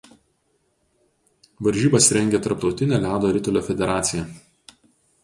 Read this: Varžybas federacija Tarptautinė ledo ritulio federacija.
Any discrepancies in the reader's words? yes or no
yes